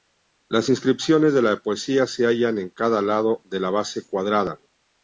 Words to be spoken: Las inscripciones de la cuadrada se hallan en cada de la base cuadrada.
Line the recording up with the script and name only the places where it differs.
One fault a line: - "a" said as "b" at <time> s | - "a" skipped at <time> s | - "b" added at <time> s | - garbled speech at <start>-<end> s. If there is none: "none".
- "cuadrada" said as "poesía" at 1.6 s
- "lado" added at 3.0 s